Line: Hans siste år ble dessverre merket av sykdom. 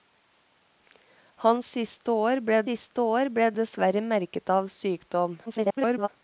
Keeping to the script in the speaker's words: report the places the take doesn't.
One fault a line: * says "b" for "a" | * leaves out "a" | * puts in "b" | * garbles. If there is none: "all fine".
* puts in "siste år ble"
* garbles